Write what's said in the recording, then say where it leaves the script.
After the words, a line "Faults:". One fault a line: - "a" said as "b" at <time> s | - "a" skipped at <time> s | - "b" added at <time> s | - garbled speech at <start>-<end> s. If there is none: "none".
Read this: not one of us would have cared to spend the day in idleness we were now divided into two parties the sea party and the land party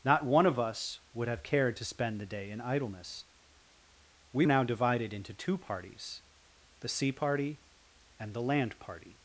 not one of us would have cared to spend the day in idleness we now divided into two parties the sea party and the land party
Faults:
- "were" skipped at 4.5 s